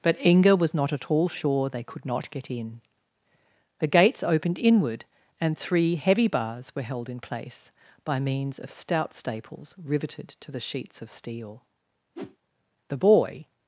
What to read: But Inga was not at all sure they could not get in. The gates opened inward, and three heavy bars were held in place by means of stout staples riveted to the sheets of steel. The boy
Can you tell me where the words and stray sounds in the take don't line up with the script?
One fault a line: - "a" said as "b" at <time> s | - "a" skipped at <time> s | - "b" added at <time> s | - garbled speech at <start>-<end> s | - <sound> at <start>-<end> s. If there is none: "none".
- whoosh at 12.2-12.4 s